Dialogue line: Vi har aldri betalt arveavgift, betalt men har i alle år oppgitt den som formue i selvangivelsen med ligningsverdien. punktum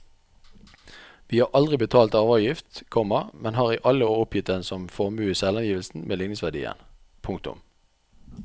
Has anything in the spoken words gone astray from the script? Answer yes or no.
yes